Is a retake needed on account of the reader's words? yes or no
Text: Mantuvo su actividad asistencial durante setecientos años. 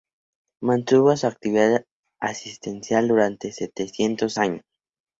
no